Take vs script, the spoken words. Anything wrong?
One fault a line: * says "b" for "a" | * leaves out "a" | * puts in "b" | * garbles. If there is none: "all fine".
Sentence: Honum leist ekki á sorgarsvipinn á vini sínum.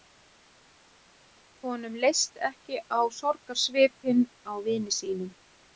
all fine